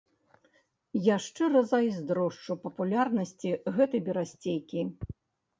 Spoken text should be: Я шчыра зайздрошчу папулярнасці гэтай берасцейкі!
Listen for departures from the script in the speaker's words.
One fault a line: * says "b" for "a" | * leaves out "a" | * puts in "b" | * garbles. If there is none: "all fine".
all fine